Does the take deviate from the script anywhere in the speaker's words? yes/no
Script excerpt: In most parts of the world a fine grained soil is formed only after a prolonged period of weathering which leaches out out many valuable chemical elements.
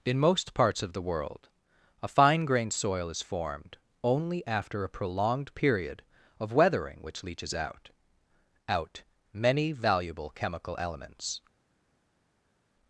no